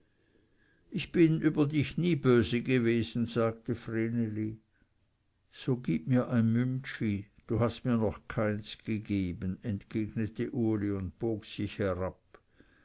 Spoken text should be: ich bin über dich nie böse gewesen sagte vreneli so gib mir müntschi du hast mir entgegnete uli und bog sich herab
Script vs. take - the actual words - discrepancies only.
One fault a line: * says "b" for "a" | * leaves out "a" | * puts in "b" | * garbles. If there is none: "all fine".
* puts in "ein"
* puts in "noch keins gegeben"